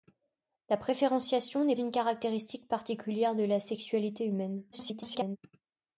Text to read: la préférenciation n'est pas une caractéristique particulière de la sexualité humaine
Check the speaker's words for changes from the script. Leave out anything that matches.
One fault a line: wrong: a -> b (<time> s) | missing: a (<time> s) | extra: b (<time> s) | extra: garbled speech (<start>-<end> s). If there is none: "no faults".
missing: pas (1.8 s)
extra: garbled speech (4.7-5.4 s)